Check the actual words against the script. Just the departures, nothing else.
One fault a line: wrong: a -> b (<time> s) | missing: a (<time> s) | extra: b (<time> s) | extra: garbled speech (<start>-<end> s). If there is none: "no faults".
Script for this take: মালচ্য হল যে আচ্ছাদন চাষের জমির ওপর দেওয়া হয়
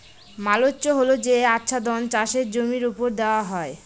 no faults